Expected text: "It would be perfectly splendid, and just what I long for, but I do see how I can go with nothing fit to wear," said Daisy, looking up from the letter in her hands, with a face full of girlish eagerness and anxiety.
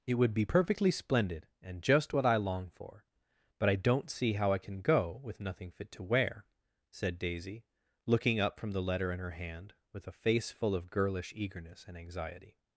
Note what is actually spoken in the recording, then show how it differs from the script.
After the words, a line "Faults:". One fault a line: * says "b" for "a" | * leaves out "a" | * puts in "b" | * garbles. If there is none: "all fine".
"It would be perfectly splendid, and just what I long for, but I don't see how I can go with nothing fit to wear," said Daisy, looking up from the letter in her hand, with a face full of girlish eagerness and anxiety.
Faults:
* says "don't" for "do"
* says "hand" for "hands"